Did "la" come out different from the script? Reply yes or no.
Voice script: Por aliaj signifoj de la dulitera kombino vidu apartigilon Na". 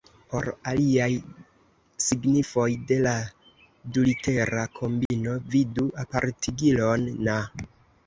no